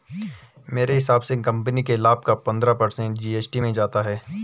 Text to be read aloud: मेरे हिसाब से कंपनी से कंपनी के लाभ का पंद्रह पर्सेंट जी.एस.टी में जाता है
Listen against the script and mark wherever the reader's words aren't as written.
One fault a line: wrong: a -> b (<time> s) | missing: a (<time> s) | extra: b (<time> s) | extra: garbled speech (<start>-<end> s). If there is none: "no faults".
missing: से कंपनी (1.8 s)